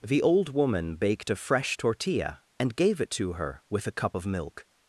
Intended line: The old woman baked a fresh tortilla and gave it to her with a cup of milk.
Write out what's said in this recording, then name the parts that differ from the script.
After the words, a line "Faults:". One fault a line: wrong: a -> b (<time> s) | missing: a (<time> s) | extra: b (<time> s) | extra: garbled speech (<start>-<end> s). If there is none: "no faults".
The old woman baked a fresh tortilla and gave it to her with a cup of milk.
Faults:
no faults